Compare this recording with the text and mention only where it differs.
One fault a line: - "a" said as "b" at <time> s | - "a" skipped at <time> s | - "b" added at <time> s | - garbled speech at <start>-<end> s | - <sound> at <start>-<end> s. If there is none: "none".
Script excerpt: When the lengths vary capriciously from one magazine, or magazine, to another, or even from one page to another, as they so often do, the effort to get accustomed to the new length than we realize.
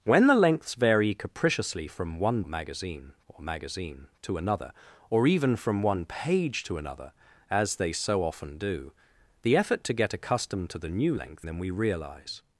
none